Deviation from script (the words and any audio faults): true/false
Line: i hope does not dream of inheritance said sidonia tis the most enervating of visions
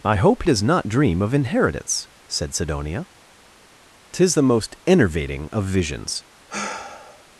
true